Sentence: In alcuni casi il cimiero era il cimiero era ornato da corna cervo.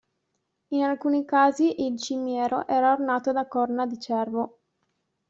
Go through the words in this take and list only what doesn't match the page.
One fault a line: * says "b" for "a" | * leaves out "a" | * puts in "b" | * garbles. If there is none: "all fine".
* leaves out "il cimiero era"
* puts in "di"